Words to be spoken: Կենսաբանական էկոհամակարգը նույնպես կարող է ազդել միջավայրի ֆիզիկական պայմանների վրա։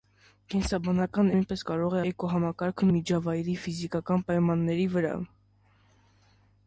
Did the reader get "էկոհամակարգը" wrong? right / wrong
wrong